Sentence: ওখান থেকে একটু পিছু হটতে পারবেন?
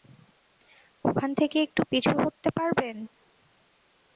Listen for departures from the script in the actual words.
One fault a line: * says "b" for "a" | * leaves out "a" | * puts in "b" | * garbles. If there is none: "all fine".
all fine